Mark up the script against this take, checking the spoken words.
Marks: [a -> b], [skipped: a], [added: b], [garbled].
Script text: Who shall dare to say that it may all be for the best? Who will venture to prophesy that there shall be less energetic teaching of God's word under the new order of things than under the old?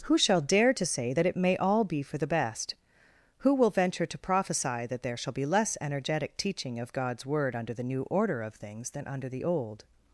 Who shall dare to say that it may all be for the best? Who will venture to prophesy that there shall be less energetic teaching of God's word under the new order of things than under the old?